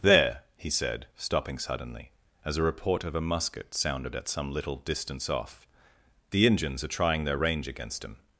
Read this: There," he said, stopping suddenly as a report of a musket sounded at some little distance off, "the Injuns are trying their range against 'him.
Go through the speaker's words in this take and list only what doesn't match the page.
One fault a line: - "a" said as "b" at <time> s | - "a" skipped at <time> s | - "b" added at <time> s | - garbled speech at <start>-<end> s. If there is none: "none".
none